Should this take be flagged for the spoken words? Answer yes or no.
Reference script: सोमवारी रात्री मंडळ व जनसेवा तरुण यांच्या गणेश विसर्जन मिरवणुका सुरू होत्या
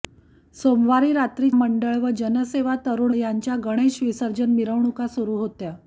no